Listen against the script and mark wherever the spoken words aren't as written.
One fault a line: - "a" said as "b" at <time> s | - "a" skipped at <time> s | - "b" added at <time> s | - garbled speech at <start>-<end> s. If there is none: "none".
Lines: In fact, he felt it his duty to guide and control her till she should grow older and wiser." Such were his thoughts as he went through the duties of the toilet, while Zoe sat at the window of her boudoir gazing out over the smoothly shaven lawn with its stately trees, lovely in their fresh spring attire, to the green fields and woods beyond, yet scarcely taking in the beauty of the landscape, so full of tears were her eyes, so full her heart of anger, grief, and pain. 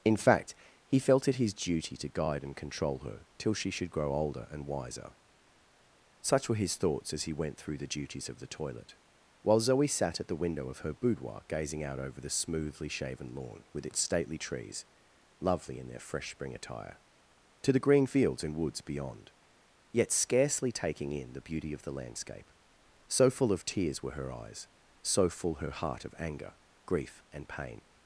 none